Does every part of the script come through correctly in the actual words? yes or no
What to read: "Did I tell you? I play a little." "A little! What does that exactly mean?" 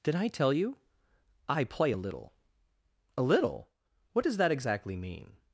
yes